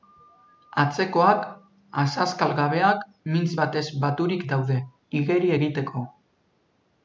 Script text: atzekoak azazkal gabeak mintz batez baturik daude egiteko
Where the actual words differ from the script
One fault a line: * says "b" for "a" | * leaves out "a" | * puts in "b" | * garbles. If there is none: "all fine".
* puts in "igeri"